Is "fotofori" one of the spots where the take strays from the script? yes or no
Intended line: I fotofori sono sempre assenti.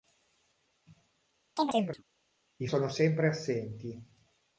yes